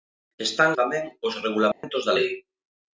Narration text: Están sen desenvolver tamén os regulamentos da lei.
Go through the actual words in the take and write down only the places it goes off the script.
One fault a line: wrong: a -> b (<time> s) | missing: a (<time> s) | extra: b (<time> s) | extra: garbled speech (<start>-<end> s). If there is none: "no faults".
missing: sen desenvolver (0.7 s)